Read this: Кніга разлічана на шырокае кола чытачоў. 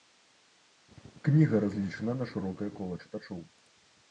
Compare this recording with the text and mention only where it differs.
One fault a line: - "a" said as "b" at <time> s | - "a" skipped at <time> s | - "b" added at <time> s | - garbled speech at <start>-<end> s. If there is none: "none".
none